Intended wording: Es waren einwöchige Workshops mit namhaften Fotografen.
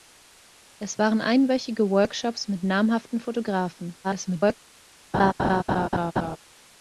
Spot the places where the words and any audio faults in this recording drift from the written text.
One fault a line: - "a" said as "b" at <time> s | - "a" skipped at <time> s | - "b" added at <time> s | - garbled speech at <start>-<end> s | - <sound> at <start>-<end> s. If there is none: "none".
- garbled speech at 4.0-4.6 s
- laugh at 5.1-6.4 s